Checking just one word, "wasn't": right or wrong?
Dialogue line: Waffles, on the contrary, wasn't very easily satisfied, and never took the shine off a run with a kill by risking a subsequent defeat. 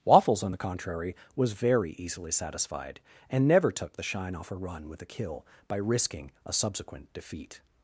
wrong